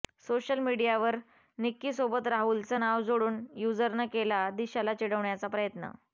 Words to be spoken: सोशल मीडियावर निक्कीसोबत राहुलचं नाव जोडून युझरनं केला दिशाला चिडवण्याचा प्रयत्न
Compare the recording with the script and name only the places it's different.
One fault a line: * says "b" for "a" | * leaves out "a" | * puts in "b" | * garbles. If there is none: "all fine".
all fine